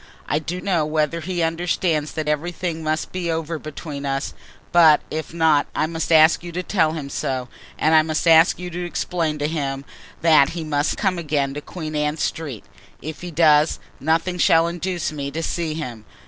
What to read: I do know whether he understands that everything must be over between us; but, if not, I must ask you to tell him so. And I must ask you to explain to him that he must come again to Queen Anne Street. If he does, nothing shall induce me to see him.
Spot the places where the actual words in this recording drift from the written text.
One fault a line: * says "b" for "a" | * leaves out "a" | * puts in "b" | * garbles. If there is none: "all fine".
all fine